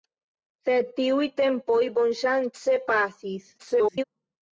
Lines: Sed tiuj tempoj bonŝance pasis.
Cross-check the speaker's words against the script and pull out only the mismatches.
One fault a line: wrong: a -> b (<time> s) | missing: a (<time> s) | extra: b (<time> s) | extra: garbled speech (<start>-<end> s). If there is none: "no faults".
extra: garbled speech (3.6-4.0 s)